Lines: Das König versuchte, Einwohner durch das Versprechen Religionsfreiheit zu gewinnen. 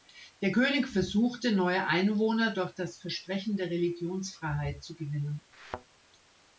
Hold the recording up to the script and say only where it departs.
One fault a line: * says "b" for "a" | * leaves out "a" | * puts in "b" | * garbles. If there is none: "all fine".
* says "Der" for "Das"
* puts in "neue"
* puts in "der"